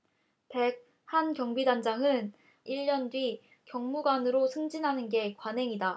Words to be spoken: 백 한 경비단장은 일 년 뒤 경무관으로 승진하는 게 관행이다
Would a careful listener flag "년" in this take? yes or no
no